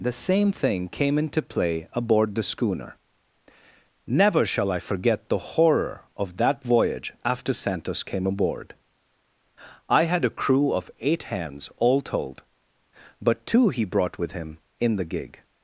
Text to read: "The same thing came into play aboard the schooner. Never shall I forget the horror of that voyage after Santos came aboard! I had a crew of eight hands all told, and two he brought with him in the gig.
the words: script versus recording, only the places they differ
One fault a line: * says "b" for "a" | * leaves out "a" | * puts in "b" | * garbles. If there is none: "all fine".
* says "but" for "and"